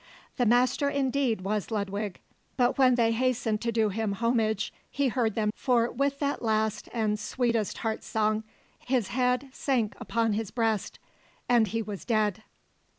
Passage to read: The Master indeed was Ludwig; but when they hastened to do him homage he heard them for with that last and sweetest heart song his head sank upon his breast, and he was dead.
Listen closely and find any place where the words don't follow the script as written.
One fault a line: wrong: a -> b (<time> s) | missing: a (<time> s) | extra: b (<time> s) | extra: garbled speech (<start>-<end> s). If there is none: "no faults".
no faults